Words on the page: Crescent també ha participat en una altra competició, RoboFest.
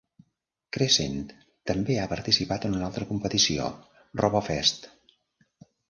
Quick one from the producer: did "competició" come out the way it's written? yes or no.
yes